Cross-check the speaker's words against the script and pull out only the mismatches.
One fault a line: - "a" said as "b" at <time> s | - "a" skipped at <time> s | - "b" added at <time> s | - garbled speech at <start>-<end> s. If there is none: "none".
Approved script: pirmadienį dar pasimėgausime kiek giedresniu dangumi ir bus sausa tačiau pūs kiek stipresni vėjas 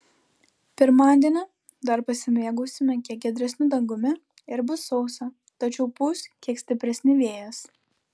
none